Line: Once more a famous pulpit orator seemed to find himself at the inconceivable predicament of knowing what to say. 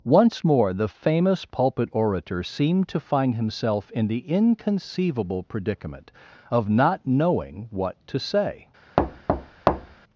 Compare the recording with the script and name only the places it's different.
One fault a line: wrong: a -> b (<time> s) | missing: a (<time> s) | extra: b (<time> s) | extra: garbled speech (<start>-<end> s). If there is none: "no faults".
wrong: a -> the (0.7 s)
wrong: at -> in (3.9 s)
extra: not (6.7 s)